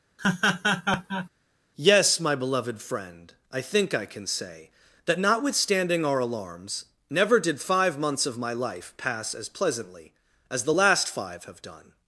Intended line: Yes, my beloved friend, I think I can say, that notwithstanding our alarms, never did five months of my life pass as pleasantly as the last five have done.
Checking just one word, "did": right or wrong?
right